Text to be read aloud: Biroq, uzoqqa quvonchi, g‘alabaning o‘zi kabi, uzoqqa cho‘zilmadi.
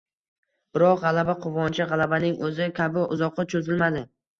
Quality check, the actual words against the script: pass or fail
fail